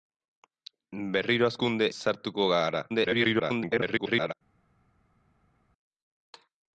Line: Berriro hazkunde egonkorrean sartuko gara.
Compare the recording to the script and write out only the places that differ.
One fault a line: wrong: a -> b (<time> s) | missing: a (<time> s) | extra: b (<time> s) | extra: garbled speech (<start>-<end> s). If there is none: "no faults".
missing: egonkorrean (1.9 s)
extra: garbled speech (2.9-4.3 s)